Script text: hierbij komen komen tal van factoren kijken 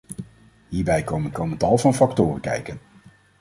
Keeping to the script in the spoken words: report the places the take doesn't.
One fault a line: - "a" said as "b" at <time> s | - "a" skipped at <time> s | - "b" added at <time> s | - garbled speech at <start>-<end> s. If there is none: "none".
none